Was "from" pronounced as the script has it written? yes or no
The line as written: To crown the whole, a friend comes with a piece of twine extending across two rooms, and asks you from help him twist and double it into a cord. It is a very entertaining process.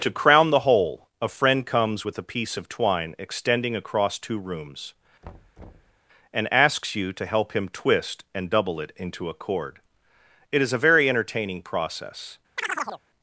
no